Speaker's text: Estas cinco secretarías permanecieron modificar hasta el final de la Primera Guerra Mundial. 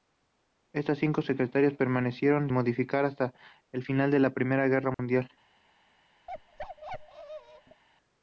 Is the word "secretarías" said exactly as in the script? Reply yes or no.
yes